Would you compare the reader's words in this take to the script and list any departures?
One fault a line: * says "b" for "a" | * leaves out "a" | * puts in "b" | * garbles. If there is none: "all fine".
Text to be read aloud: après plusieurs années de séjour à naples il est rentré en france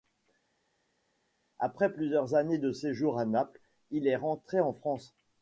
all fine